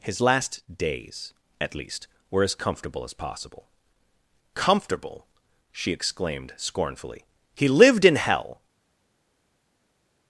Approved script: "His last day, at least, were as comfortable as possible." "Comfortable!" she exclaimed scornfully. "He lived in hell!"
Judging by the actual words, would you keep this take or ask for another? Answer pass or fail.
fail